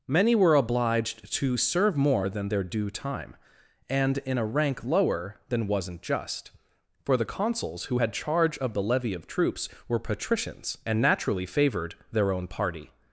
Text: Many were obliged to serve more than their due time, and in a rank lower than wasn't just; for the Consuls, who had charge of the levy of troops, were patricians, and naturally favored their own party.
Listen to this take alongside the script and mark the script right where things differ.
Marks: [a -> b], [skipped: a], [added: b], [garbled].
Many were obliged to serve more than their due time, and in a rank lower than wasn't just; for the Consuls, who had charge of the levy of troops, were patricians, and naturally favored their own party.